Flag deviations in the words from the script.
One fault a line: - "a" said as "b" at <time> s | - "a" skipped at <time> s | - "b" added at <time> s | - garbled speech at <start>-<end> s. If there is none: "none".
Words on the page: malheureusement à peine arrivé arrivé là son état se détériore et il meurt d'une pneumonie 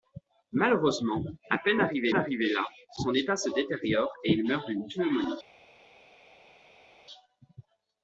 none